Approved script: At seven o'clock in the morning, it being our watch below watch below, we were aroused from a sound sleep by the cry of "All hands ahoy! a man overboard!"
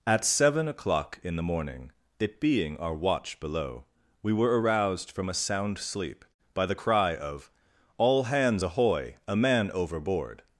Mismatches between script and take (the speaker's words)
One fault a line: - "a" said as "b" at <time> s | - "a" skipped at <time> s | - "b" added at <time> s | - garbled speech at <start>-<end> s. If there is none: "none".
- "watch below" skipped at 3.9 s